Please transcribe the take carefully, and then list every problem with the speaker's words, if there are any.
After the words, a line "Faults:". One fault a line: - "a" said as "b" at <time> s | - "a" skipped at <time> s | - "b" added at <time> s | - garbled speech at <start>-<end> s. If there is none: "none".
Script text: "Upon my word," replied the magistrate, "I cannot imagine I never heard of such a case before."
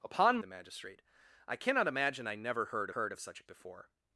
"Upon the magistrate, "I cannot imagine I never heard heard of such a before."
Faults:
- "my word replied" skipped at 0.4 s
- "heard" added at 2.9 s
- "case" skipped at 3.4 s